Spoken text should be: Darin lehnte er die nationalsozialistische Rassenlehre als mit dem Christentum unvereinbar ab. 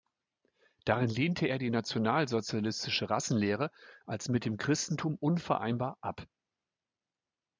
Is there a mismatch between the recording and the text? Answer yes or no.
no